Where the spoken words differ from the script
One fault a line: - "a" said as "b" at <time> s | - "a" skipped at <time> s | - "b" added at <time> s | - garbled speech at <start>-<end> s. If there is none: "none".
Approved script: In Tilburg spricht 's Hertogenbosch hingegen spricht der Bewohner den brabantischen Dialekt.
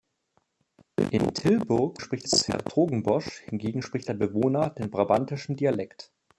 none